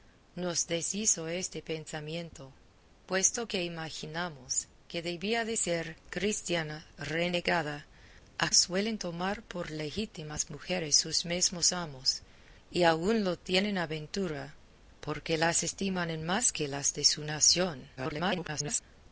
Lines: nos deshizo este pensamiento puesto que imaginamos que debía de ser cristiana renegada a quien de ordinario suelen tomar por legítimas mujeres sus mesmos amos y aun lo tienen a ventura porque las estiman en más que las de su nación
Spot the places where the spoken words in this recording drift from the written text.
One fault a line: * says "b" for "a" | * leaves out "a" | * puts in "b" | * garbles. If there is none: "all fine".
* leaves out "quien de ordinario"
* garbles